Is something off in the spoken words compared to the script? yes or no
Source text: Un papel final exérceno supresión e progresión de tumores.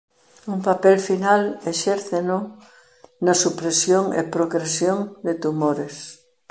yes